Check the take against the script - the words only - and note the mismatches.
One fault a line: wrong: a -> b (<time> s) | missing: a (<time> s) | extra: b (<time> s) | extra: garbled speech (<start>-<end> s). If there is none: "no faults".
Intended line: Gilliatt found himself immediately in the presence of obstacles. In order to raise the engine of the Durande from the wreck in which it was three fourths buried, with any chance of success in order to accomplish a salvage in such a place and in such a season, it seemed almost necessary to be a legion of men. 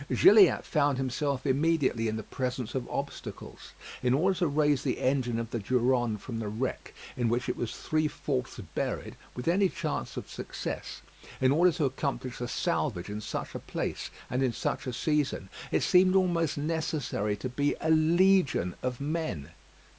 no faults